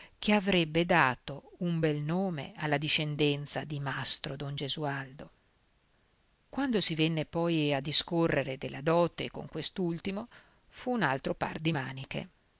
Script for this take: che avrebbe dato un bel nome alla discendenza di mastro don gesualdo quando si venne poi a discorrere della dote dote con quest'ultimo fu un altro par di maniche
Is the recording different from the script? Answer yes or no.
yes